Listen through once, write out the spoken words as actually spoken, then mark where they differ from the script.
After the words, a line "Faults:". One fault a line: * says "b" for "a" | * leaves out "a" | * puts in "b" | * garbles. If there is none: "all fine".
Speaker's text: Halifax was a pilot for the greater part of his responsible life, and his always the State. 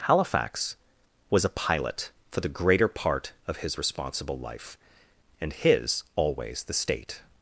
Halifax was a pilot for the greater part of his responsible life, and his always the State.
Faults:
all fine